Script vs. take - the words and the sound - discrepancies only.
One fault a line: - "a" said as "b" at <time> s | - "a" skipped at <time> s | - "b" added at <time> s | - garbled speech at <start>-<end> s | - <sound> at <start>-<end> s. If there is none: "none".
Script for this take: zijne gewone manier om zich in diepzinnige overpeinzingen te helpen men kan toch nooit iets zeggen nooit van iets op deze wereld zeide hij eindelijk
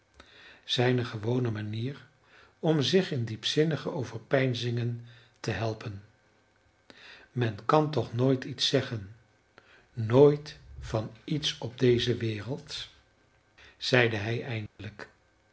- dropout at 14.7-14.8 s